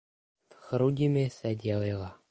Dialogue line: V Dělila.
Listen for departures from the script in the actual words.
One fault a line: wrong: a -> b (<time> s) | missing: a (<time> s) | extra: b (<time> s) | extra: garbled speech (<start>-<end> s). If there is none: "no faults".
extra: Chrudimi se (0.6 s)